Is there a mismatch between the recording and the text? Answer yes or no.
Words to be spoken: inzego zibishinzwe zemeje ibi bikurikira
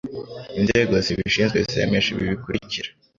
no